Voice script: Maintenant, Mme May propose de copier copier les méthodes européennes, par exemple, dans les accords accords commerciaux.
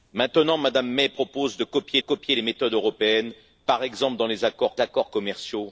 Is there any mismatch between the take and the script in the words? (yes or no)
no